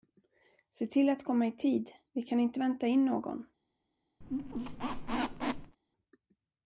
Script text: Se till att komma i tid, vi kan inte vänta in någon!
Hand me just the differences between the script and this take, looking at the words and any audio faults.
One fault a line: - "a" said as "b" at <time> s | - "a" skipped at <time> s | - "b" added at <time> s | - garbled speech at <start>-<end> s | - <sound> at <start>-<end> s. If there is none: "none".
- squeak at 4.2-5.8 s